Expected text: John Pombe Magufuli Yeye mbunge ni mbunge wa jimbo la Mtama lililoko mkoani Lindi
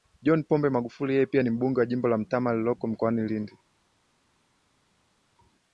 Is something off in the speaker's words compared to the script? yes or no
yes